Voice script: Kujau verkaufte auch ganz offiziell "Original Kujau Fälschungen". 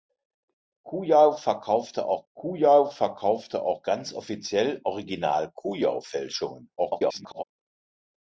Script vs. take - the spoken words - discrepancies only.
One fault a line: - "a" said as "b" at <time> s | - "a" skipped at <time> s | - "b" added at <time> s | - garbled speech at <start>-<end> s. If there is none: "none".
- "kujau verkaufte auch" added at 2.3 s
- garbled speech at 6.8-7.4 s